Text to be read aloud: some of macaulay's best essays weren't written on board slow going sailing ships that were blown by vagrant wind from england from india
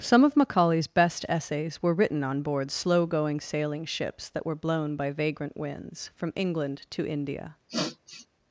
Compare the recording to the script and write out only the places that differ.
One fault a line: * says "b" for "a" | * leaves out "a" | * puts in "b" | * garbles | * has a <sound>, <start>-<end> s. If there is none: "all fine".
* says "were" for "weren't"
* says "winds" for "wind"
* says "to" for "from"
* has a sniff, 7.7-8.3 s